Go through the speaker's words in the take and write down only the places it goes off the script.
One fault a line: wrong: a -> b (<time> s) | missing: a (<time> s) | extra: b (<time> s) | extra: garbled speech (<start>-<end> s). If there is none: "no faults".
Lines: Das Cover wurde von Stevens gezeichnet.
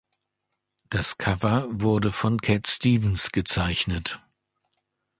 extra: Cat (2.4 s)